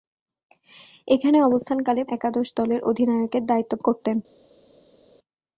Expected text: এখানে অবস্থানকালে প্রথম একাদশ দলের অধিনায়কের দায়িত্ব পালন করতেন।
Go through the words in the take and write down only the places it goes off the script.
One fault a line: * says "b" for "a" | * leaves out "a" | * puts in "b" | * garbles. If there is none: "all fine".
* leaves out "প্রথম"
* leaves out "পালন"